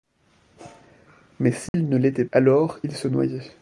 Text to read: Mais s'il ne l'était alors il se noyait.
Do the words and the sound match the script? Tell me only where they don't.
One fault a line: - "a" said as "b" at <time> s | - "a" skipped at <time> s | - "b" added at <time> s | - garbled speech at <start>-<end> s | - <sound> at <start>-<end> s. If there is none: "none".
- dropout at 1.7-1.7 s